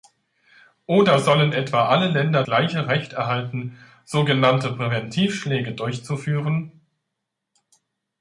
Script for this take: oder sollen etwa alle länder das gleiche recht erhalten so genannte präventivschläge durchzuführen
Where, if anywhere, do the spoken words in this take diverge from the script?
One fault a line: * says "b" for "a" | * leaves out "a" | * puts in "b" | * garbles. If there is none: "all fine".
* leaves out "das"